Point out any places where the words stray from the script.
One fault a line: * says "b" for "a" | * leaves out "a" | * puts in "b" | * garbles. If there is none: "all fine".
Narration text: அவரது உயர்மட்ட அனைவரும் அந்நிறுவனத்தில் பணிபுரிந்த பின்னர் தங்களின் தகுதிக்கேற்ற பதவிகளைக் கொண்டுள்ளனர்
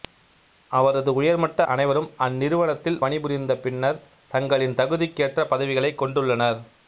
all fine